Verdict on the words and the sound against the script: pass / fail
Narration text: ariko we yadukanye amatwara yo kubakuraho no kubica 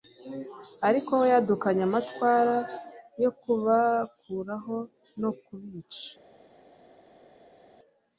pass